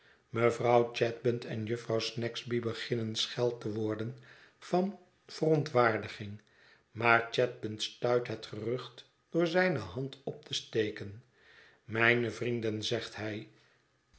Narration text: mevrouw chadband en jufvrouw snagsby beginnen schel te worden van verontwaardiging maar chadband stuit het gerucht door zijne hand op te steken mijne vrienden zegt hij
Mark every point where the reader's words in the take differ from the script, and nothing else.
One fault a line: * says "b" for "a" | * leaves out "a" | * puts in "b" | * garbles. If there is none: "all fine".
all fine